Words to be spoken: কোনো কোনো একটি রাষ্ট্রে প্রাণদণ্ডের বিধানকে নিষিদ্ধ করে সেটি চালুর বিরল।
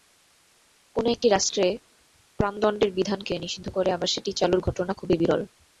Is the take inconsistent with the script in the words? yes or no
yes